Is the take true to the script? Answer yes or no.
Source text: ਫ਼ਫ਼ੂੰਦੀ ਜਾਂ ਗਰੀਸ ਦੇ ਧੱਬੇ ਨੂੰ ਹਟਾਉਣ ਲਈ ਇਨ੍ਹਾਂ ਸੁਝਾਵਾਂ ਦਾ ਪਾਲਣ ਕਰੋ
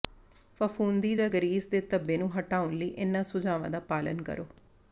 yes